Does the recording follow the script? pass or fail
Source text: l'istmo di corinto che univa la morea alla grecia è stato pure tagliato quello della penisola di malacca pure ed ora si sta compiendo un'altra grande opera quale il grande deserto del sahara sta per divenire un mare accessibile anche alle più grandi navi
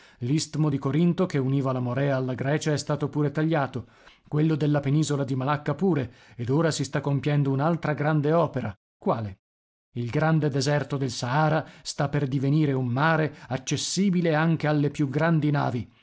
pass